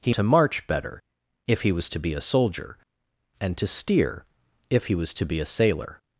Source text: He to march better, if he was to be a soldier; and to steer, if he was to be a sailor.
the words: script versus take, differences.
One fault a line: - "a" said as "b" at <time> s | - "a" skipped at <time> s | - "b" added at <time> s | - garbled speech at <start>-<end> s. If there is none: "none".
none